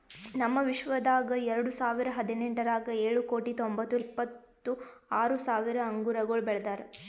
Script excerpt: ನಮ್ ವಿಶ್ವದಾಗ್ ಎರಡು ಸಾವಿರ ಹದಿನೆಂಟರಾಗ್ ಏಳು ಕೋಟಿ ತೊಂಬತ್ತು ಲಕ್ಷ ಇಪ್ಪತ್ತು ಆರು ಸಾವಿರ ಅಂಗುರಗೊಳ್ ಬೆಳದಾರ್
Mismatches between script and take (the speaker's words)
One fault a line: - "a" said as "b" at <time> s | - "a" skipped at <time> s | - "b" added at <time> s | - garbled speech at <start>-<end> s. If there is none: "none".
- "ಲಕ್ಷ" skipped at 4.0 s